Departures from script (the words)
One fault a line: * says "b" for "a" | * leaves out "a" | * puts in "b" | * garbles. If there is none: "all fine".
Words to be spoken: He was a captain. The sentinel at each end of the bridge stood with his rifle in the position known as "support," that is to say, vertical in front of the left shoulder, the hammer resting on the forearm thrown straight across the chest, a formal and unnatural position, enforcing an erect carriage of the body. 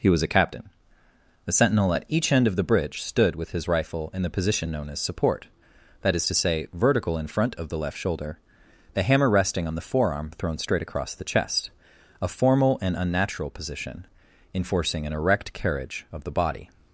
all fine